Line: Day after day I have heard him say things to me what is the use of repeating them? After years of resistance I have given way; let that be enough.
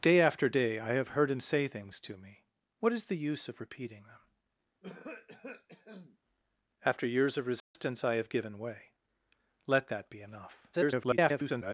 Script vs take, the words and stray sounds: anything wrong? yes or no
yes